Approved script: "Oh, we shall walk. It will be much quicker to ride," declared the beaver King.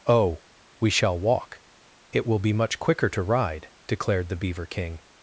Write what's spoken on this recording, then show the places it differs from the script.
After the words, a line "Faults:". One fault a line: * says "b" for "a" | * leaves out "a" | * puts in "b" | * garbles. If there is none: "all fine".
"Oh, we shall walk. It will be much quicker to ride," declared the beaver King.
Faults:
all fine